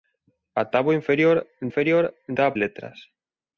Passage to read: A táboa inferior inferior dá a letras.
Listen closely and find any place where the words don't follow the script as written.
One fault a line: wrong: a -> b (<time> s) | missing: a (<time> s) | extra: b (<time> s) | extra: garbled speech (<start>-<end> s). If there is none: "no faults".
no faults